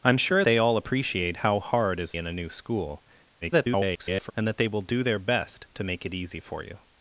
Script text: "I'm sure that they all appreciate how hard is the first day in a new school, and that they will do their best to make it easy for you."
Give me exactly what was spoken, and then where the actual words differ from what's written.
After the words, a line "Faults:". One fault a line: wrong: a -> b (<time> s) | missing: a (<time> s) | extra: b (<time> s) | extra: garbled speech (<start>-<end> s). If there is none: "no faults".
"I'm sure they all appreciate how hard is in a new school, [garbled] and that they will do their best to make it easy for you."
Faults:
missing: that (0.4 s)
missing: the first day (2.1 s)
extra: garbled speech (3.4-4.3 s)